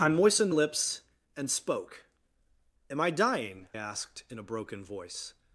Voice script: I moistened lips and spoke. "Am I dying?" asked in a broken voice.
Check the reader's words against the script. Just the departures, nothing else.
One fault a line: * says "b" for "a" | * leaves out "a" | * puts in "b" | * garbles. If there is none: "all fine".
all fine